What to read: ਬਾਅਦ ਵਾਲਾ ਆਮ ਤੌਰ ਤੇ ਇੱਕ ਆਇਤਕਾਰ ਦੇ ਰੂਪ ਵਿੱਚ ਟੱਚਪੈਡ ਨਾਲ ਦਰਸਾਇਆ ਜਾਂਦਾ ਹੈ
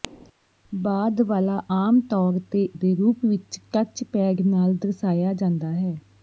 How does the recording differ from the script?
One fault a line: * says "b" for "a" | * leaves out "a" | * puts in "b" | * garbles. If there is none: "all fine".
* leaves out "ਇੱਕ ਆਇਤਕਾਰ"